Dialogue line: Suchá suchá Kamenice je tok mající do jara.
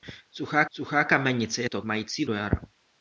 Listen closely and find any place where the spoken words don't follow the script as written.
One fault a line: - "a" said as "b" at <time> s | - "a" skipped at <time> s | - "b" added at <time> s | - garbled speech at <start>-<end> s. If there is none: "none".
none